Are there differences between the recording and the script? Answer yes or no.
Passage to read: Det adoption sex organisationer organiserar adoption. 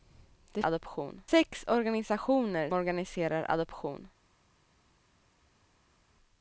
no